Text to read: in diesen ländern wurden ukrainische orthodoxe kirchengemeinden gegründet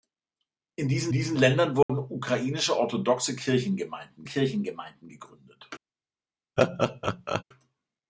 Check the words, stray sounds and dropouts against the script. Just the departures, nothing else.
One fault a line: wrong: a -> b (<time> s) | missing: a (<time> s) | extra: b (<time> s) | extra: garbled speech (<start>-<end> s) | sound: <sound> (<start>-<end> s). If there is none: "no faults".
extra: diesen (1.1 s)
sound: dropout (1.8-1.9 s)
extra: kirchengemeinden (4.3 s)
sound: laugh (6.6-7.4 s)